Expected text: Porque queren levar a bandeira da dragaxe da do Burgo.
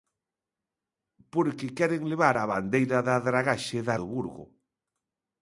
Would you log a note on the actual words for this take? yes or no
no